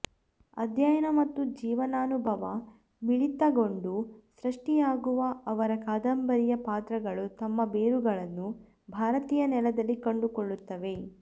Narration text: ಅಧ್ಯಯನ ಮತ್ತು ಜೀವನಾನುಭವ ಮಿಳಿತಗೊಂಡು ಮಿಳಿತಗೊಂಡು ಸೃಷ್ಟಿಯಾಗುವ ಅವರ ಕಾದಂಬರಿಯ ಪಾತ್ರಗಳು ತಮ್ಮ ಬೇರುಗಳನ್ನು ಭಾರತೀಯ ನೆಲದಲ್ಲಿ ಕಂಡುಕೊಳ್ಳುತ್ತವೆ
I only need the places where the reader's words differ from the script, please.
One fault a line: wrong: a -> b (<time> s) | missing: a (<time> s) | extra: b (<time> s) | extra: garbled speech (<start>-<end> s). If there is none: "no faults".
missing: ಮಿಳಿತಗೊಂಡು (3.9 s)